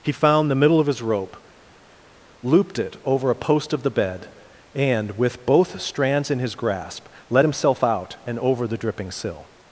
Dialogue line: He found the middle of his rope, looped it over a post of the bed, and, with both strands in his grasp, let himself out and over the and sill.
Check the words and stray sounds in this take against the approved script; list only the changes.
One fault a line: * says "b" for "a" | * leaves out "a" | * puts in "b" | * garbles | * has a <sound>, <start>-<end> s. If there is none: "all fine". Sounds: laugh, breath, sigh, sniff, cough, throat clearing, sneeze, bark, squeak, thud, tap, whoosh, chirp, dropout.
* says "dripping" for "and"